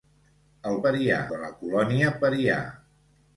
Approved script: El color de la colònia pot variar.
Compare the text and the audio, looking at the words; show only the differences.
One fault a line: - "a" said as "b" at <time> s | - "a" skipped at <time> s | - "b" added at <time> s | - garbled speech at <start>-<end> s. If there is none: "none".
- "color" said as "variar" at 0.9 s
- "pot" skipped at 2.1 s